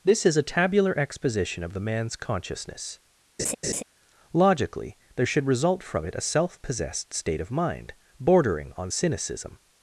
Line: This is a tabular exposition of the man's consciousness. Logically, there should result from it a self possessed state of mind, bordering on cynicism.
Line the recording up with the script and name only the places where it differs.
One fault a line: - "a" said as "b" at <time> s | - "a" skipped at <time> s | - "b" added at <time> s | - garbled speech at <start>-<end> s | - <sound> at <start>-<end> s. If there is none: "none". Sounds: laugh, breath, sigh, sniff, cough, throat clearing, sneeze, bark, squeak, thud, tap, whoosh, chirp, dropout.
- laugh at 3.4-3.8 s